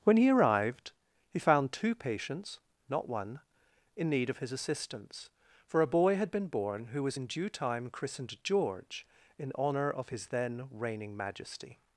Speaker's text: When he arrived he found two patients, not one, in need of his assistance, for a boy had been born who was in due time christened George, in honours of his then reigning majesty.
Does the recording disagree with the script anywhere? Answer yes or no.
yes